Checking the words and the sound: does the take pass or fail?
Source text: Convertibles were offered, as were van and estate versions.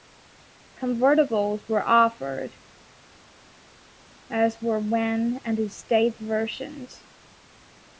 pass